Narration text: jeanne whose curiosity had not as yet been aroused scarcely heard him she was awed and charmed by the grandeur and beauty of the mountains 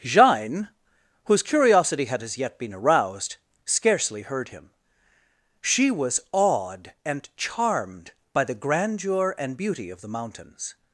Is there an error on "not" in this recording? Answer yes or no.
yes